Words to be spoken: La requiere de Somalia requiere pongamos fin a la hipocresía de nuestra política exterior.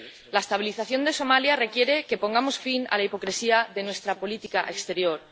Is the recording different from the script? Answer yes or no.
yes